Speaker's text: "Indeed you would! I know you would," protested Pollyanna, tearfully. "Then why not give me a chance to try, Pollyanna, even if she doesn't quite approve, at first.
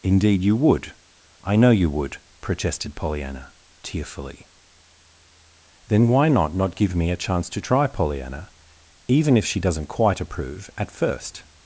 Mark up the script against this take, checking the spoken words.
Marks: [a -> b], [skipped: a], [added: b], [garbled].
"Indeed you would! I know you would," protested Pollyanna, tearfully. "Then why not [added: not] give me a chance to try, Pollyanna, even if she doesn't quite approve, at first.